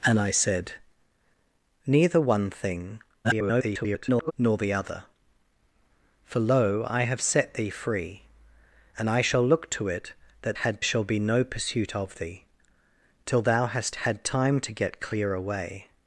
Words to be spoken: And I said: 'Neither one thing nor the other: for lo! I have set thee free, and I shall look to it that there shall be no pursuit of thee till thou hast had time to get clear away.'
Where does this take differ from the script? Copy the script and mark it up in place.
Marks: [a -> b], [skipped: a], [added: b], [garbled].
And I said: 'Neither one thing [garbled] nor the other: for lo! I have set thee free, and I shall look to it that [there -> had] shall be no pursuit of thee till thou hast had time to get clear away.'